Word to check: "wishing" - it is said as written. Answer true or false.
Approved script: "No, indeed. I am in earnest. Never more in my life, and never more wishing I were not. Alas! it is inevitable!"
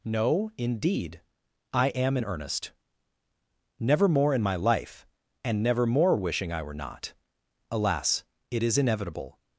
true